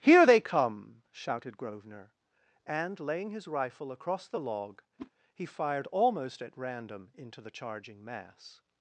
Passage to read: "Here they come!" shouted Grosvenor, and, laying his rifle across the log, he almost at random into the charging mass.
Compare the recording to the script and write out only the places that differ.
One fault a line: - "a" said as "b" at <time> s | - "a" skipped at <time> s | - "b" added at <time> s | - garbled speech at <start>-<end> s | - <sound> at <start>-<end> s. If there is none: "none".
- whoosh at 5.0-5.1 s
- "fired" added at 5.5 s